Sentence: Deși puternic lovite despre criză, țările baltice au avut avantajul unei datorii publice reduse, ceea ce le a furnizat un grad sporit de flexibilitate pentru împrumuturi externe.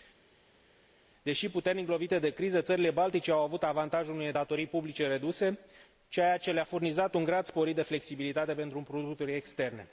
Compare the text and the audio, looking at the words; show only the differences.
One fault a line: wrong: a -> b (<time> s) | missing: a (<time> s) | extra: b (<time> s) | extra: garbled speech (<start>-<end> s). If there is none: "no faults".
wrong: despre -> de (2.2 s)